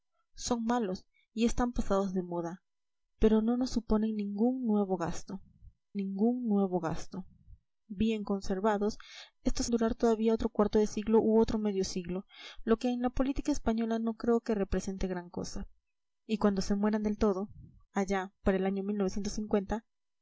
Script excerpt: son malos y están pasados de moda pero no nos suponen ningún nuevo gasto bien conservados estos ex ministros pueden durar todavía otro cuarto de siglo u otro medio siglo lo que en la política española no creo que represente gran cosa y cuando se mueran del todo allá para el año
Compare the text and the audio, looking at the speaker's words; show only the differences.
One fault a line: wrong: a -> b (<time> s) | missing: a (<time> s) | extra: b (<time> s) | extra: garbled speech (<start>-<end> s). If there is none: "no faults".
extra: ningún nuevo gasto (5.9 s)
missing: ex ministros pueden (9.7 s)